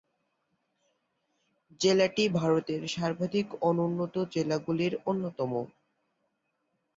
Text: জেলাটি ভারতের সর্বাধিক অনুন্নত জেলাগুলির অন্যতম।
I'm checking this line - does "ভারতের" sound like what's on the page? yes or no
yes